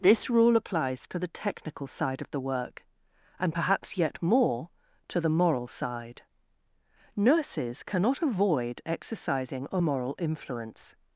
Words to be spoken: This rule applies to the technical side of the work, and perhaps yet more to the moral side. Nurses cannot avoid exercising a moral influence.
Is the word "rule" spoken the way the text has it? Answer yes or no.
yes